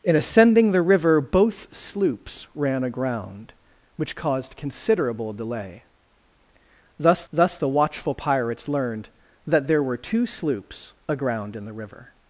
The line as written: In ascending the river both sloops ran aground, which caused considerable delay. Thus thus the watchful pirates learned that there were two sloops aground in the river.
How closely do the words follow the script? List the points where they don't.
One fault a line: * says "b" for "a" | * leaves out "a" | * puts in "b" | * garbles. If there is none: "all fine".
all fine